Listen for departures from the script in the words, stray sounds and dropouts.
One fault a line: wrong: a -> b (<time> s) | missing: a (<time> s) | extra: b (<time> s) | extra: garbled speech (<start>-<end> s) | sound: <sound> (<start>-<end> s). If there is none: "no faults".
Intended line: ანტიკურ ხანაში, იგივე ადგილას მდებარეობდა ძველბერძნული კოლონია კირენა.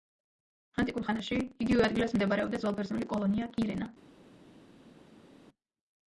no faults